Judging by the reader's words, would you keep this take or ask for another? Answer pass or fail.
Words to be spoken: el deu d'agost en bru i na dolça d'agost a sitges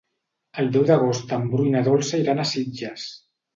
fail